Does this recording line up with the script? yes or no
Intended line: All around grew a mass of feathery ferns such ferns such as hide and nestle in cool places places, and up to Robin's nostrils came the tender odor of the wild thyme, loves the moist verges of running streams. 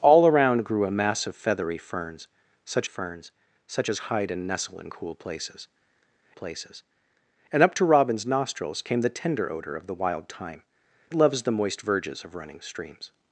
yes